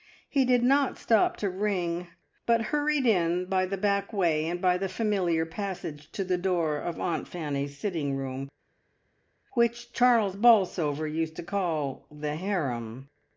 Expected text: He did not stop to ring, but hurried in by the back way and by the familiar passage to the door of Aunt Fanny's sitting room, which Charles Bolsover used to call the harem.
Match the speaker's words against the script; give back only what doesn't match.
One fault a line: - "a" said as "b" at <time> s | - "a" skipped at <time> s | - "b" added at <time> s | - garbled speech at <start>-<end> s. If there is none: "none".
none